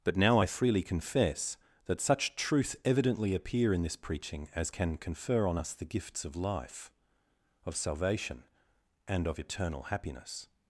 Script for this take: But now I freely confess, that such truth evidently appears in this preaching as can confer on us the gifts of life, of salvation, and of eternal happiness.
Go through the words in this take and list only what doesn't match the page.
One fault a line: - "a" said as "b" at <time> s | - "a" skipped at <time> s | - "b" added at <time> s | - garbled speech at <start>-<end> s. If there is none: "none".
- "appears" said as "appear" at 3.3 s